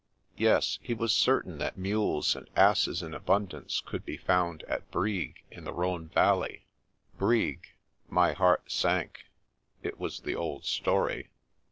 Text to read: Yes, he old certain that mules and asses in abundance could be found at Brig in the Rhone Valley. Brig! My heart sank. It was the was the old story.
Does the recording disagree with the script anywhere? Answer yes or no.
yes